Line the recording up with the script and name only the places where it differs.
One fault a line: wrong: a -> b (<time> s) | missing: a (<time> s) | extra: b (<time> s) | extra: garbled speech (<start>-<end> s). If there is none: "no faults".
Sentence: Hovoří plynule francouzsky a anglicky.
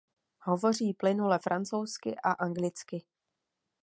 no faults